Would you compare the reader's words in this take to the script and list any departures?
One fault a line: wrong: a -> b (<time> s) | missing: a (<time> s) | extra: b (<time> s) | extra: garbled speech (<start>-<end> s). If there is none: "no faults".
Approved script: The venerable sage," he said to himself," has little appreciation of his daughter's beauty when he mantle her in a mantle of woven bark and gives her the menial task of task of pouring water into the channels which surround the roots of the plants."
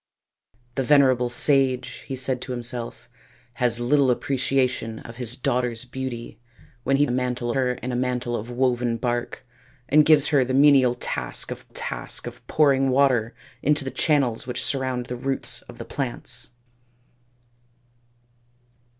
no faults